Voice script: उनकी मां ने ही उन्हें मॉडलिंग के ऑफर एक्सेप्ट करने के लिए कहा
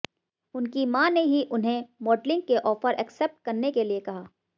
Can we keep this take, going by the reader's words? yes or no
yes